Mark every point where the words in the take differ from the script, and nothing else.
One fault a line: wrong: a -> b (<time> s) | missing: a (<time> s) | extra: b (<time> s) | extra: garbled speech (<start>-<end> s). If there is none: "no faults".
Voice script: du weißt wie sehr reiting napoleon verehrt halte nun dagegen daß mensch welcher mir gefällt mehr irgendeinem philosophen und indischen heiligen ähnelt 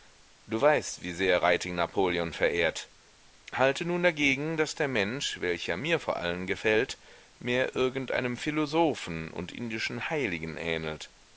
extra: der (4.8 s)
extra: vor allen (6.0 s)